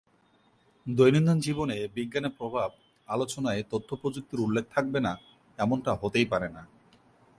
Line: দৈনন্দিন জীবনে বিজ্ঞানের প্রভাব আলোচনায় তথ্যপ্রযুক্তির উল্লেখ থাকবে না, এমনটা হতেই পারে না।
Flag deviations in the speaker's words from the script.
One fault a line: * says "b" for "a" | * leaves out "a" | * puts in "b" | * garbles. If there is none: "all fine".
all fine